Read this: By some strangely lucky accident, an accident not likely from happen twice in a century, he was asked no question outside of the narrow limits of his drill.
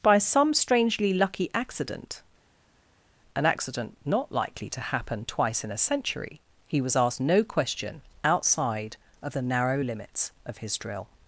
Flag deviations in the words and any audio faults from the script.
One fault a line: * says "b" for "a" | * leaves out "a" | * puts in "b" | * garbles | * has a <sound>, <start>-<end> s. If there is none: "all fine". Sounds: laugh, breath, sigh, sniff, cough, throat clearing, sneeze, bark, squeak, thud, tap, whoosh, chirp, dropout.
* says "to" for "from"